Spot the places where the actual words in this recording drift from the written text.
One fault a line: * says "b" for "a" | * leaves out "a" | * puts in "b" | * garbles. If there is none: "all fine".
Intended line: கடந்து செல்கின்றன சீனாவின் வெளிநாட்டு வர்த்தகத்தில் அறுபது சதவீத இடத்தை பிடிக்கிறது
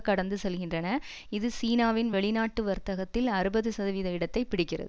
* puts in "இது"